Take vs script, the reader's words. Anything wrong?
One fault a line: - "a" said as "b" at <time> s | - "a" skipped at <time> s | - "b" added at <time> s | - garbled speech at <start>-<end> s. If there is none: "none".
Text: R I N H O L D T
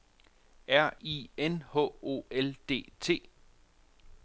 none